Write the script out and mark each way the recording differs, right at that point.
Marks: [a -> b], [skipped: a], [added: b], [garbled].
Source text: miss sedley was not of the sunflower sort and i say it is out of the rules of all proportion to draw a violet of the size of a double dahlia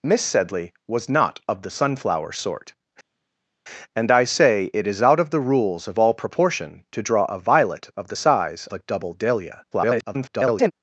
miss sedley was not of the sunflower sort and i say it is out of the rules of all proportion to draw a violet of the size [skipped: of] a double dahlia [garbled]